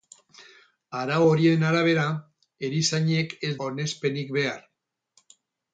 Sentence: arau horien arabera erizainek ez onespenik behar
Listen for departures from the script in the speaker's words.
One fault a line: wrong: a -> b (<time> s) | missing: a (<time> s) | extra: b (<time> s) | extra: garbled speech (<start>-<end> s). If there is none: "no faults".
no faults